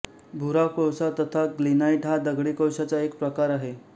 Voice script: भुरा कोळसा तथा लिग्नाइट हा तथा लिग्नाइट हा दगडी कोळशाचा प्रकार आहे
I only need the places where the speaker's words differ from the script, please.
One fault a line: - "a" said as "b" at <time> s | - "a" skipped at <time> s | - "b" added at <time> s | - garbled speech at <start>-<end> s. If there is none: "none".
- "तथा लिग्नाइट हा" skipped at 2.2 s
- "एक" added at 3.0 s